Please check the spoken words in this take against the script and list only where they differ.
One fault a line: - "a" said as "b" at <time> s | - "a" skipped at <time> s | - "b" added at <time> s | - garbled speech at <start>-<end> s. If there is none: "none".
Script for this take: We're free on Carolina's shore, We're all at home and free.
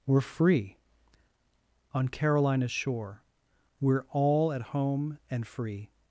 none